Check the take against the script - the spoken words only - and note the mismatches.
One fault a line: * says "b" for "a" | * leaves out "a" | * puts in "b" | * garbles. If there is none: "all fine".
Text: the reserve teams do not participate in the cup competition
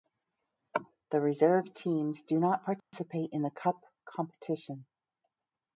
all fine